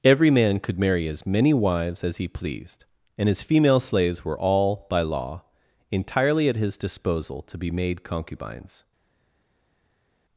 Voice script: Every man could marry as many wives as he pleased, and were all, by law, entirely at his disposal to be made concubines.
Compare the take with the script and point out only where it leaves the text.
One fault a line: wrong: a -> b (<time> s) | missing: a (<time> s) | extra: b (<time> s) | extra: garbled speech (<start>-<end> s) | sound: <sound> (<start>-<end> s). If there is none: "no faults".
extra: his female slaves (3.3 s)